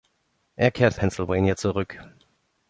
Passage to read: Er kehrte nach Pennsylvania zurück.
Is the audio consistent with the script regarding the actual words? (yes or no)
no